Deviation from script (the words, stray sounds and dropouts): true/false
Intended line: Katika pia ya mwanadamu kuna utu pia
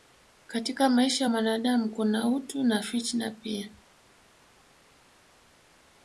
true